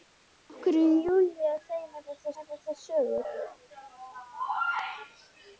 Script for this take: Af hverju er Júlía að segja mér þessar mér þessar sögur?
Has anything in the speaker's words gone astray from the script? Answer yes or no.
no